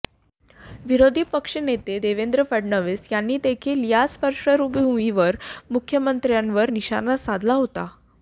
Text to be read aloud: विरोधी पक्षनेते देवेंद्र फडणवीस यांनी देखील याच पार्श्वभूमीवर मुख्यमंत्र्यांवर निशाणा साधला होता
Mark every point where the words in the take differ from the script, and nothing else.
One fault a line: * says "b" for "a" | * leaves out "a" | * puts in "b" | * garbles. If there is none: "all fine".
all fine